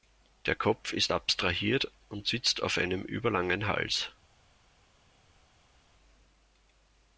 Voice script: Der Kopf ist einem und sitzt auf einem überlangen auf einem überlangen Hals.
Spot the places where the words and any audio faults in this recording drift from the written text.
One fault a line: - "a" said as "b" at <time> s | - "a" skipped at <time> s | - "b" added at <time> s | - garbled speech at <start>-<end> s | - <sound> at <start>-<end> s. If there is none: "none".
- "einem" said as "abstrahiert" at 1.1 s
- "auf einem überlangen" skipped at 3.7 s